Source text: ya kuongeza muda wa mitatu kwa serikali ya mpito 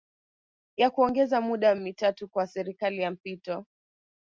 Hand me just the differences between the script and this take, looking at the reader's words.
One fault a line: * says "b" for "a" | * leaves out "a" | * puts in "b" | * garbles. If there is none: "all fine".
all fine